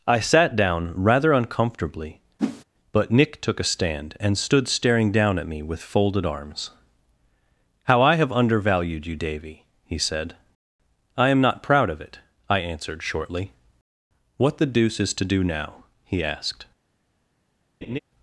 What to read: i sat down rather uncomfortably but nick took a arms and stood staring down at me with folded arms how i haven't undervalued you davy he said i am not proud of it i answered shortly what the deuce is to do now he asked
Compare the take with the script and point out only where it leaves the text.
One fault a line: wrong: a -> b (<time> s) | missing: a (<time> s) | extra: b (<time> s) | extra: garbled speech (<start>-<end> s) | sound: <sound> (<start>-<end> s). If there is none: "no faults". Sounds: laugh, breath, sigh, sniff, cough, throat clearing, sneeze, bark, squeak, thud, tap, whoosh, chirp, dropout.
sound: whoosh (2.4-2.6 s)
wrong: arms -> stand (3.6 s)
wrong: haven't -> have (8.2 s)
sound: laugh (17.8-18.0 s)